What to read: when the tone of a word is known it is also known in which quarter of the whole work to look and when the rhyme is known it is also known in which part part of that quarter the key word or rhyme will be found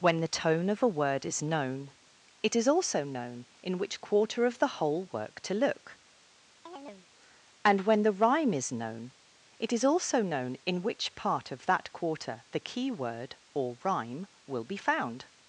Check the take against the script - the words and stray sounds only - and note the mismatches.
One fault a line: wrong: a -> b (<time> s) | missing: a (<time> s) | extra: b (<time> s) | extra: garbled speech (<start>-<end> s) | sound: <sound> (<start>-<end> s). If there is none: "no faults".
sound: chirp (6.7-7.1 s)
missing: part (11.5 s)